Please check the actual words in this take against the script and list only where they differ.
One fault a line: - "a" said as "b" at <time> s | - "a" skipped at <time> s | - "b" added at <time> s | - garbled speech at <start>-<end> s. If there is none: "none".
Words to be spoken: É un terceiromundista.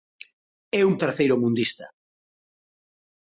none